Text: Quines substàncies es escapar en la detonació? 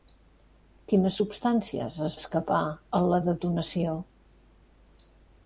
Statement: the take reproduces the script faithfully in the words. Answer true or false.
true